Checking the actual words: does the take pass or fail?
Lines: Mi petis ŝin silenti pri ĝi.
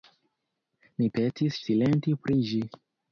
fail